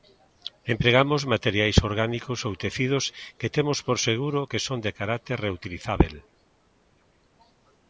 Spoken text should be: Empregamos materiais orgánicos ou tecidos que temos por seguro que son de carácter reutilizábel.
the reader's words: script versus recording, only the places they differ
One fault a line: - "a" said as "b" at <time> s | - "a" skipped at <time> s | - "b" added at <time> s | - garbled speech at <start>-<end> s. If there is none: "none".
none